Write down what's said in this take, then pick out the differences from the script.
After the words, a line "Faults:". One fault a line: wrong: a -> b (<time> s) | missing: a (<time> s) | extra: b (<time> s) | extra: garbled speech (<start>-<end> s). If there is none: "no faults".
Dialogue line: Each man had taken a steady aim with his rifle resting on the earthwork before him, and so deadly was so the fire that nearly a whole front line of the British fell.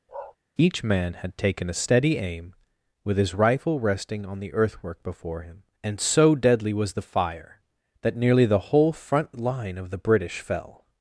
Each man had taken a steady aim with his rifle resting on the earthwork before him, and so deadly was the fire that nearly the whole front line of the British fell.
Faults:
missing: so (6.9 s)
wrong: a -> the (8.4 s)